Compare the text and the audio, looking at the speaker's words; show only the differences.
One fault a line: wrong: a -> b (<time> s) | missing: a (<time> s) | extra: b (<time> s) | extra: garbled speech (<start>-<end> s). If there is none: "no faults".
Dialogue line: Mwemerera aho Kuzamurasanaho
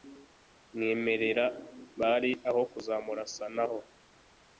extra: bari (2.0 s)